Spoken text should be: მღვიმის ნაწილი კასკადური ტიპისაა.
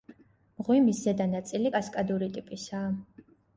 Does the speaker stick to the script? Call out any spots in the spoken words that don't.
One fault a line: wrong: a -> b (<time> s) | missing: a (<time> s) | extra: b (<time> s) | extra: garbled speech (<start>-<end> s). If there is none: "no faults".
extra: ზედა (1.1 s)